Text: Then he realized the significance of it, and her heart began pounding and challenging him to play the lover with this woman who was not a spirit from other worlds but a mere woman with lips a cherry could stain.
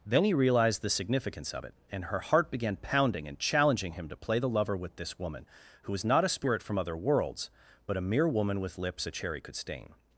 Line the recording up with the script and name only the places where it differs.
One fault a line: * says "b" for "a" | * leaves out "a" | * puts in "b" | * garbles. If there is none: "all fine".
all fine